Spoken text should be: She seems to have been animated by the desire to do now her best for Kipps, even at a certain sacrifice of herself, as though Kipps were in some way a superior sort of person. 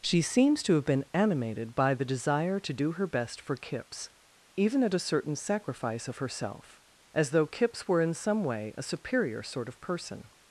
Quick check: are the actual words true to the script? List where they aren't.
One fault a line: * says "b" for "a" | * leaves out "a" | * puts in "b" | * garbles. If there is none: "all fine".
* leaves out "now"